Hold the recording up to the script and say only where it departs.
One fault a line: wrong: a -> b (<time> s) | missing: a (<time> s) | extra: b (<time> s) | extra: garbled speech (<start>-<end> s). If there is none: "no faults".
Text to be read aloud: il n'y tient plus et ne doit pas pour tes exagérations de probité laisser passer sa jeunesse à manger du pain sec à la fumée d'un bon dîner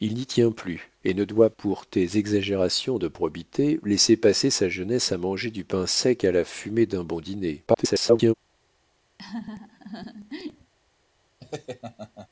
missing: pas (1.5 s)
extra: garbled speech (7.7-8.3 s)